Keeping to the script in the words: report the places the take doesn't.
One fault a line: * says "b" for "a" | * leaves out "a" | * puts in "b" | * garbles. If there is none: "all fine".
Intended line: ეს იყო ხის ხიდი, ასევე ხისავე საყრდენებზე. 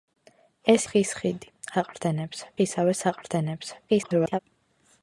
* leaves out "იყო"
* says "საყრდენებზე" for "ასევე"
* garbles